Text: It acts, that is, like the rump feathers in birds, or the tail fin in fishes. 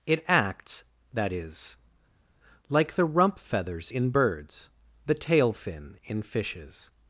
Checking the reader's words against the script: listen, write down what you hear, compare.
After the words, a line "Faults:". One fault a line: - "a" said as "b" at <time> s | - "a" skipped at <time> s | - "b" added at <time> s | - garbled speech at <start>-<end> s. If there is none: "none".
It acts, that is, like the rump feathers in birds, the tail fin in fishes.
Faults:
- "or" skipped at 4.7 s